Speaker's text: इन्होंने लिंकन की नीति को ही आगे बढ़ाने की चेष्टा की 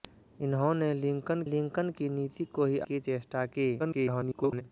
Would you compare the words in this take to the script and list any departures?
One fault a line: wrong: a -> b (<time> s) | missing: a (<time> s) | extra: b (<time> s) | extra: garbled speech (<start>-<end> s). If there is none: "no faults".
extra: लिंकन (1.4 s)
missing: आगे बढ़ाने (2.8 s)
extra: garbled speech (3.8-4.6 s)